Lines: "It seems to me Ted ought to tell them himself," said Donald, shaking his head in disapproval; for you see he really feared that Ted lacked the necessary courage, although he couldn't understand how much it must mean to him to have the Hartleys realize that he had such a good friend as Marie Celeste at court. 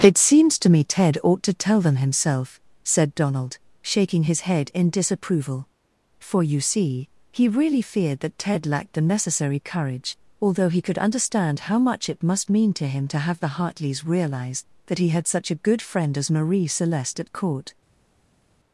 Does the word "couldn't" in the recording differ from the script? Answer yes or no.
yes